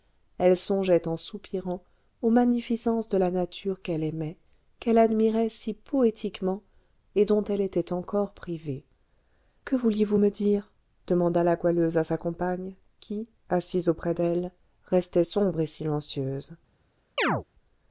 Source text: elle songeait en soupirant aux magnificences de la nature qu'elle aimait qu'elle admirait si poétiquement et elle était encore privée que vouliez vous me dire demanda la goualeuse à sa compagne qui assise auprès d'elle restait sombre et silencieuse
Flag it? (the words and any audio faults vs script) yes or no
yes